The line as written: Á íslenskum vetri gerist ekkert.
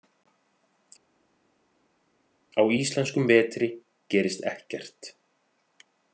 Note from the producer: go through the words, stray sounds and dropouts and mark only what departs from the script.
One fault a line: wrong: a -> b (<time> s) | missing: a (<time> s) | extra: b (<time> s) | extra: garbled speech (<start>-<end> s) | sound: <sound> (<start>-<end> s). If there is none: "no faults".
no faults